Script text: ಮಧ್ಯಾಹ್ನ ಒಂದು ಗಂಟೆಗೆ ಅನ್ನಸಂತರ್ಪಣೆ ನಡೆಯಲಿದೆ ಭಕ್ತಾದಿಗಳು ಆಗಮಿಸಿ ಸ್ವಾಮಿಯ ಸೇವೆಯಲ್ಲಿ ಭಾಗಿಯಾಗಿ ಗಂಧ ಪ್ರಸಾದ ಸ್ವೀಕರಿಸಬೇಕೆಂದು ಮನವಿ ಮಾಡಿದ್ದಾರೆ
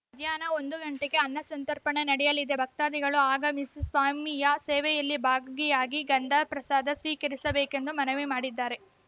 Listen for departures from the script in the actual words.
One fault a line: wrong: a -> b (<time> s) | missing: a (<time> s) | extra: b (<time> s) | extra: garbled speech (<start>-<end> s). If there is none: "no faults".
no faults